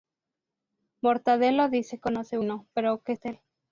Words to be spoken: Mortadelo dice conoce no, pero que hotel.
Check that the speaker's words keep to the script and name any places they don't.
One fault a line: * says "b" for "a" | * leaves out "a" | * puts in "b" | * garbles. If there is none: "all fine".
all fine